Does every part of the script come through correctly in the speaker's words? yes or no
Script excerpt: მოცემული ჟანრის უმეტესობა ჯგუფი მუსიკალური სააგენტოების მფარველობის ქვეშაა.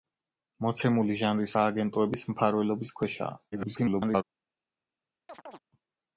no